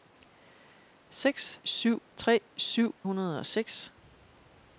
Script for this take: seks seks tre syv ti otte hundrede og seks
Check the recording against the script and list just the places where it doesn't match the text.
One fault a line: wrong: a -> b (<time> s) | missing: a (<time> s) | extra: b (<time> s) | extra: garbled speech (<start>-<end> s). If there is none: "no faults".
wrong: seks -> syv (1.6 s)
missing: ti otte (2.9 s)